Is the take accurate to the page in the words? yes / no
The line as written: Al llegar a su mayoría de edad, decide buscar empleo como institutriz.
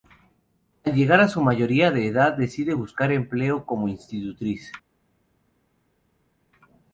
yes